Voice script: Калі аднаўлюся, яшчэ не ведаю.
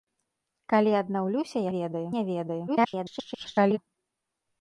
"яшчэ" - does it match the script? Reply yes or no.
no